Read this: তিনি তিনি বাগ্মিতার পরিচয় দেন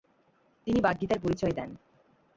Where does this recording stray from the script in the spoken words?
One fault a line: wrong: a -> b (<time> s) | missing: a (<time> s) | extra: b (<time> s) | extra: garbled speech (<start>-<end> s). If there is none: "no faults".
missing: তিনি (0.8 s)